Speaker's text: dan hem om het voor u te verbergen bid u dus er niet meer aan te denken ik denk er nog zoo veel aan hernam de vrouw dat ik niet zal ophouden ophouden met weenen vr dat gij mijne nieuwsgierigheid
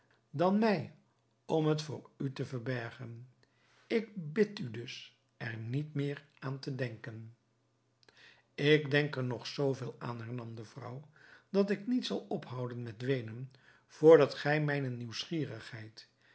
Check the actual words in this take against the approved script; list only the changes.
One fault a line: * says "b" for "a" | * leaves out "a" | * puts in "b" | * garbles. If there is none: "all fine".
* says "mij" for "hem"
* puts in "ik"
* leaves out "ophouden"